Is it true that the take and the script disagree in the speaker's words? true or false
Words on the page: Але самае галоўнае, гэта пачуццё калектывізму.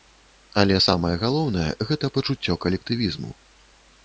false